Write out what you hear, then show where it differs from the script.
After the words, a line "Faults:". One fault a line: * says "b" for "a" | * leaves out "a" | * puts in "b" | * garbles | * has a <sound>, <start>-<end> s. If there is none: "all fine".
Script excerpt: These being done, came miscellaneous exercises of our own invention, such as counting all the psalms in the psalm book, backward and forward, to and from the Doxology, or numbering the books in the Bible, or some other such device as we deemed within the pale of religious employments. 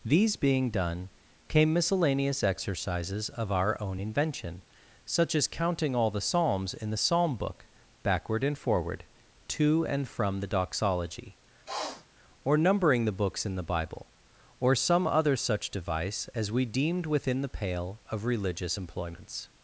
These being done, came miscellaneous exercises of our own invention, such as counting all the psalms in the psalm book, backward and forward, to and from the Doxology, or numbering the books in the Bible, or some other such device as we deemed within the pale of religious employments.
Faults:
* has a sniff, 11.7-12.1 s